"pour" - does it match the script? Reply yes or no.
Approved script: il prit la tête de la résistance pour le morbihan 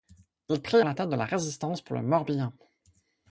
yes